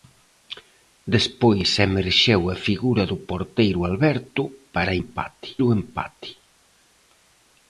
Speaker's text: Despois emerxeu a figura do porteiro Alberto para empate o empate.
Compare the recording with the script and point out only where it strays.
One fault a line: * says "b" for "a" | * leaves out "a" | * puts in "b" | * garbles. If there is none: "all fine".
all fine